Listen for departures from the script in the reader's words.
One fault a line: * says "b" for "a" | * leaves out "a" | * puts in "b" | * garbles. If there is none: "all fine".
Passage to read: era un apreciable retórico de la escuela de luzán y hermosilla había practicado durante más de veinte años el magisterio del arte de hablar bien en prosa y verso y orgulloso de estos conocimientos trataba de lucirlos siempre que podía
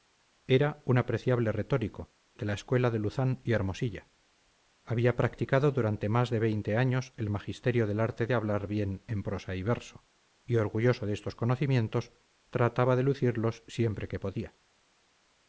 all fine